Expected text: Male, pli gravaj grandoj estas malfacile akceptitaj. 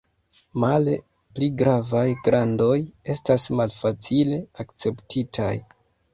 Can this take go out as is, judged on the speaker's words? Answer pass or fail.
pass